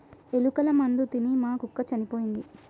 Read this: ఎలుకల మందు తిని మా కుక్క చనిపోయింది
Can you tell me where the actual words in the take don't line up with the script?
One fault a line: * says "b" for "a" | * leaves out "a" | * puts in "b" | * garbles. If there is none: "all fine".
all fine